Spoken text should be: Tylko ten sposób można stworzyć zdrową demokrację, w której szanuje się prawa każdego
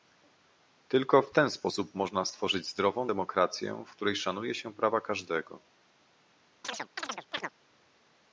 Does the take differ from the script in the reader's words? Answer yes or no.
yes